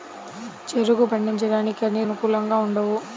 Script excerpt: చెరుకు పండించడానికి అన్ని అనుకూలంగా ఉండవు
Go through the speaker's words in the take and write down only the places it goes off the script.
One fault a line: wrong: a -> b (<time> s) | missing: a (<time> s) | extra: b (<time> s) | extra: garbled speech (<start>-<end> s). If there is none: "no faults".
no faults